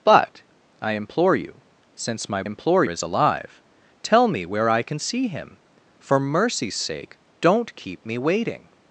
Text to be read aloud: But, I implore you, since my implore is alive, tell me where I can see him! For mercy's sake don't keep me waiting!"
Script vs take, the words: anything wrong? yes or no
no